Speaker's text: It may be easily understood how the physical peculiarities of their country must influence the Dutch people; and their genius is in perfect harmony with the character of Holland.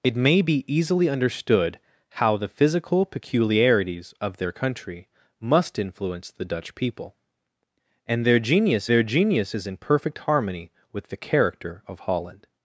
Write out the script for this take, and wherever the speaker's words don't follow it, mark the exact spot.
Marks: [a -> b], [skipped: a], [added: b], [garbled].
It may be easily understood how the physical peculiarities of their country must influence the Dutch people; and their genius [added: their genius] is in perfect harmony with the character of Holland.